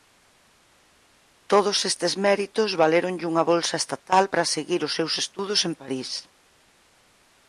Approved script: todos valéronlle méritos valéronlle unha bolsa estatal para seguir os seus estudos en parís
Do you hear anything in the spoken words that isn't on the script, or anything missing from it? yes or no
yes